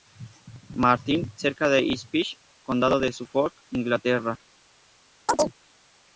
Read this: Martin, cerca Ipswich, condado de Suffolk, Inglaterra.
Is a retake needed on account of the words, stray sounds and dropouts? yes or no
yes